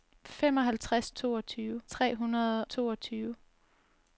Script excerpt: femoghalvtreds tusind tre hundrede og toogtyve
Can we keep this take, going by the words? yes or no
no